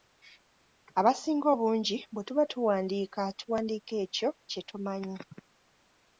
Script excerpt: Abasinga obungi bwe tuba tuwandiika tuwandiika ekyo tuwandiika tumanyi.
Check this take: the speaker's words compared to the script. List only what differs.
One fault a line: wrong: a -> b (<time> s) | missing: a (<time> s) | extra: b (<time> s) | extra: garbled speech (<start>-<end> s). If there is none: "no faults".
wrong: tuwandiika -> kye (4.5 s)